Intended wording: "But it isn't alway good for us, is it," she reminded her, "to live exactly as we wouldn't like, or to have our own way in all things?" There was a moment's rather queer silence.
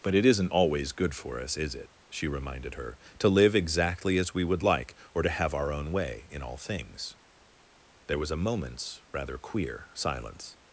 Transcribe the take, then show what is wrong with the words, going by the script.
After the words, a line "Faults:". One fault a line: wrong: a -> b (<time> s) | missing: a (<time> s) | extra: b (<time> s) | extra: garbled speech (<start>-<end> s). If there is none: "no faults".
"But it isn't always good for us, is it," she reminded her, "to live exactly as we would like, or to have our own way in all things?" There was a moment's rather queer silence.
Faults:
wrong: alway -> always (0.5 s)
wrong: wouldn't -> would (4.4 s)